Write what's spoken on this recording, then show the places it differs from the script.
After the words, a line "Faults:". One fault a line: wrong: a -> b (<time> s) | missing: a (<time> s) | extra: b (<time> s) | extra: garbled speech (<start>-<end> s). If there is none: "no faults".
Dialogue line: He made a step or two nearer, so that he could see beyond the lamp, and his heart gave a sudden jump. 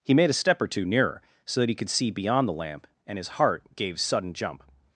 He made a step or two nearer, so that he could see beyond the lamp, and his heart gave sudden jump.
Faults:
missing: a (4.0 s)